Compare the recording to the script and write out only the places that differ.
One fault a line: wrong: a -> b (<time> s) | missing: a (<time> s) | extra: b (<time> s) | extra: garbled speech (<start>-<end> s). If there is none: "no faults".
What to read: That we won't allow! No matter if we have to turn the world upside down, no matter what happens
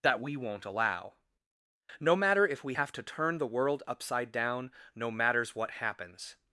wrong: matter -> matters (5.1 s)